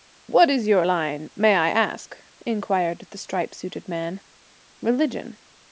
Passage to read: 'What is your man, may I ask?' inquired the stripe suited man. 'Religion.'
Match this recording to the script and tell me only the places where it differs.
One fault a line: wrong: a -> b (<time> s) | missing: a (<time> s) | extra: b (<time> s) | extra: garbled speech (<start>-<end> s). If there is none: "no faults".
wrong: man -> line (0.8 s)